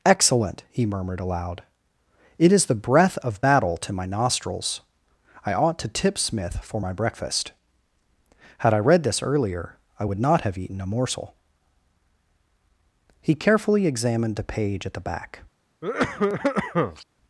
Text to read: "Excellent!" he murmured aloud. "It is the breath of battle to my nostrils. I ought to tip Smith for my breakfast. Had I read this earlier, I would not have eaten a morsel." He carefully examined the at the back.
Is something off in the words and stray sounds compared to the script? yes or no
yes